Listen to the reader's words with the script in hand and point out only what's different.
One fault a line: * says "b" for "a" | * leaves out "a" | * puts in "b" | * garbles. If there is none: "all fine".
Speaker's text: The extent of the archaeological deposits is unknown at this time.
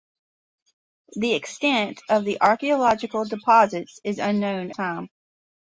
* leaves out "at this"